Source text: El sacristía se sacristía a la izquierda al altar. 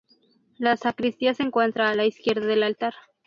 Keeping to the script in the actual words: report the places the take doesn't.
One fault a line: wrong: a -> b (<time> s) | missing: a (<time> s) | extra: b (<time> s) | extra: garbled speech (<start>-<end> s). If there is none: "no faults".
wrong: El -> La (0.6 s)
wrong: sacristía -> encuentra (1.4 s)
wrong: al -> del (2.5 s)